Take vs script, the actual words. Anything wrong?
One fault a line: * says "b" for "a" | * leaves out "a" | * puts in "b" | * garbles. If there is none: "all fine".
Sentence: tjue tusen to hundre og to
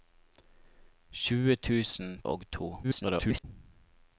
* leaves out "to hundre"
* garbles